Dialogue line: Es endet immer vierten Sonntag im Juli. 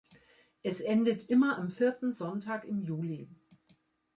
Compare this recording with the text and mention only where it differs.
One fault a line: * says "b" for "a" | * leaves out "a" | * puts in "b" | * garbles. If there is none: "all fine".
* puts in "am"